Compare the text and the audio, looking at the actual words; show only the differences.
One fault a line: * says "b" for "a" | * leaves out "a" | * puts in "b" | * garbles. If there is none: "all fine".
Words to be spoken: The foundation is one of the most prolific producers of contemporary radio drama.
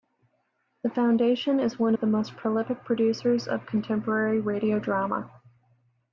all fine